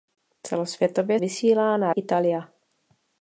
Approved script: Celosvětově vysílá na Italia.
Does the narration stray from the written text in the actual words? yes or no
no